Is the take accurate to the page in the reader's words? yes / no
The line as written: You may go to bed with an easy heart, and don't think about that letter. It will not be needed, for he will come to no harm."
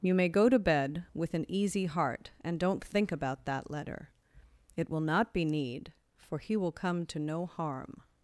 no